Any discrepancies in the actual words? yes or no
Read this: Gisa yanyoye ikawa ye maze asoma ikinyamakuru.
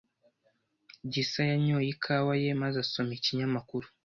no